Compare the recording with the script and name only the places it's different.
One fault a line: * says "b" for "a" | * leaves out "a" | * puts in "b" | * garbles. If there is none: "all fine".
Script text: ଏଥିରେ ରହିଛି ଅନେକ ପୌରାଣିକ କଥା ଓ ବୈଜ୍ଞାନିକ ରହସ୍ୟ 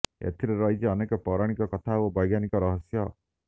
all fine